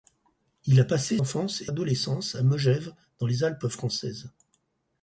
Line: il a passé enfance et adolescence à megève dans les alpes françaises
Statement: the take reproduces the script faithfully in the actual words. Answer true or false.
true